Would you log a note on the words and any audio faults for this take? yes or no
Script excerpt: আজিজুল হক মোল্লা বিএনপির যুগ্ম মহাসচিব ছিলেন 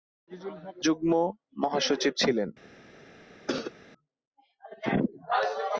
yes